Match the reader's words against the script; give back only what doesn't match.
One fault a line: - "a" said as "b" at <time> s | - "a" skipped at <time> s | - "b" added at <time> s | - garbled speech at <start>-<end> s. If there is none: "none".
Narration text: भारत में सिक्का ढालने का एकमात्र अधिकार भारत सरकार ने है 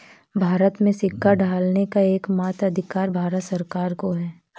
- "ने" said as "को" at 3.9 s